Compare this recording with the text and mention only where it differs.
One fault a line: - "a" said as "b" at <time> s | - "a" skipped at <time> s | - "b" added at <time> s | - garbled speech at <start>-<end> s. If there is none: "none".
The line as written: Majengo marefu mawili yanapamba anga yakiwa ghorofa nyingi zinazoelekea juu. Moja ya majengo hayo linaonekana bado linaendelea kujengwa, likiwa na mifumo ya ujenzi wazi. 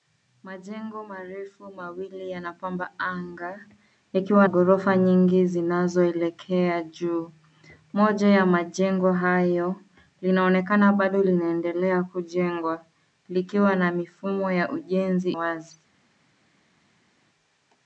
none